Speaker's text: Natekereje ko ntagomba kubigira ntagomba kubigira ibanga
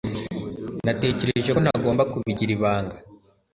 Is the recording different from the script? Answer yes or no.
yes